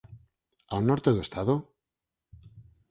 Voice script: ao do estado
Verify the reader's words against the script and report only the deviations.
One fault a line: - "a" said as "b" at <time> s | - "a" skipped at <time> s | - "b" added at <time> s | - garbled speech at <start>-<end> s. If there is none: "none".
- "norte" added at 0.9 s